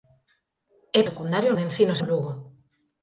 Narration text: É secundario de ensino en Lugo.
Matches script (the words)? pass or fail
pass